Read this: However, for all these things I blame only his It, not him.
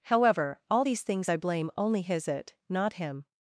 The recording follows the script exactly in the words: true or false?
false